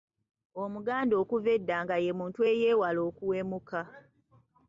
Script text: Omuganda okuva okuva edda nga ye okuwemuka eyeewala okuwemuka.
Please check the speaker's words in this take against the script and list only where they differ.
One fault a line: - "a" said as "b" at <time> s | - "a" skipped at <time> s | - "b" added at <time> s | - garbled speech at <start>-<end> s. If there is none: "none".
- "okuva" skipped at 1.5 s
- "okuwemuka" said as "muntu" at 2.2 s